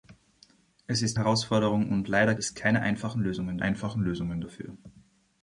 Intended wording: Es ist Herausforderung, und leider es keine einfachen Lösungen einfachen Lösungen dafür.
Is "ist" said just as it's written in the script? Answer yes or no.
yes